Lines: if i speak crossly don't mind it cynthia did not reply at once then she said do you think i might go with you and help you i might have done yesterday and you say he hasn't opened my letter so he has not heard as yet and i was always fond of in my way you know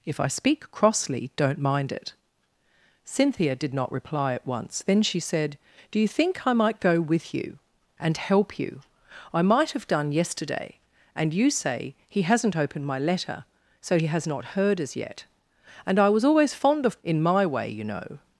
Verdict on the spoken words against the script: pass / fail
pass